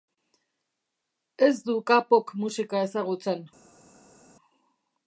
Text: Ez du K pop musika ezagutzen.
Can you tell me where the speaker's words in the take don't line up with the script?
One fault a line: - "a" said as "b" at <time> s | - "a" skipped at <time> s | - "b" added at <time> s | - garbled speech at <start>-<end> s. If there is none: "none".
none